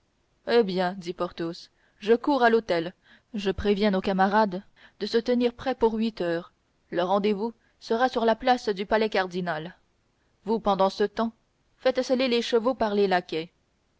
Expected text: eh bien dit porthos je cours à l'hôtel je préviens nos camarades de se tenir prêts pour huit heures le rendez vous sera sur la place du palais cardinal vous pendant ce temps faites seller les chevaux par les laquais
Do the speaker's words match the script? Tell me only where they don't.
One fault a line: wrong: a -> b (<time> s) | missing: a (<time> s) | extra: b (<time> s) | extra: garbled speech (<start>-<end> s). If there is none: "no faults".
no faults